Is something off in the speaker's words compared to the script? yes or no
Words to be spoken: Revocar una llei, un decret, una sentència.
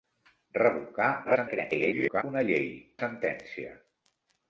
yes